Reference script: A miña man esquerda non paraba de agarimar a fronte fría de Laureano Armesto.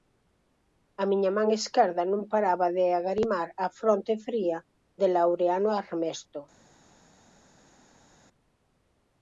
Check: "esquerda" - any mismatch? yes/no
no